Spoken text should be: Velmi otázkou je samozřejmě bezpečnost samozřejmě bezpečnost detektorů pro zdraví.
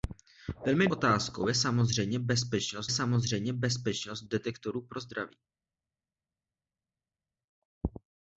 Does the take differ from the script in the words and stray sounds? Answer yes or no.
no